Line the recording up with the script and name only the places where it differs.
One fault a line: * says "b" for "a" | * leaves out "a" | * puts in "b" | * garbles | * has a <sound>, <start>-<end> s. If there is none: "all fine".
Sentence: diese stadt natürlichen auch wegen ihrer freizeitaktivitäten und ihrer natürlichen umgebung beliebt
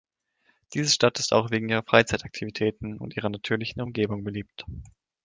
* says "ist" for "natürlichen"